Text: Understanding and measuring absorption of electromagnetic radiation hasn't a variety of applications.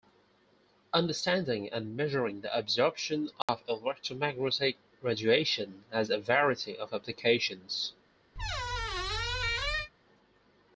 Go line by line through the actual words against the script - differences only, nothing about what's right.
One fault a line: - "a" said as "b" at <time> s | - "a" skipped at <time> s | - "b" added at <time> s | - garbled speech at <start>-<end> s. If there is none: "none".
- "the" added at 2.4 s
- "hasn't" said as "has" at 5.9 s